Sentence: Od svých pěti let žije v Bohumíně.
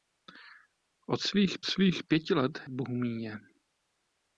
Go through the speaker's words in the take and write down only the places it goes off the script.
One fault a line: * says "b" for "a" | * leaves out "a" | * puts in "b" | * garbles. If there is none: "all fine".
* puts in "svých"
* leaves out "žije"